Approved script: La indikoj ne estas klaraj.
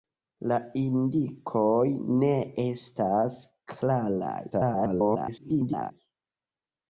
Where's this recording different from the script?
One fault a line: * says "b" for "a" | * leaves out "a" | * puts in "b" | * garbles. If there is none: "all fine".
* garbles